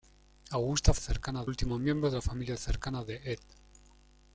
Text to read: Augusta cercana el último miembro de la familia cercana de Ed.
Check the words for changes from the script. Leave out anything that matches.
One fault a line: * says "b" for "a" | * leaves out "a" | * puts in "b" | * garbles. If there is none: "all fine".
all fine